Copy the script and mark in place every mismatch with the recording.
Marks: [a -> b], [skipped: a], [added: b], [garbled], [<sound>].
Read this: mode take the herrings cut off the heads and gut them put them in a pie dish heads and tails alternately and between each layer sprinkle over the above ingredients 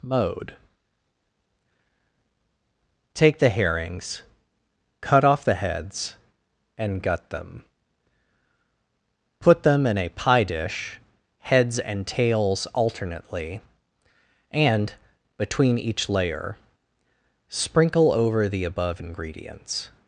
mode take the herrings cut off the heads and gut them put them in a pie dish heads and tails alternately and between each layer sprinkle over the above ingredients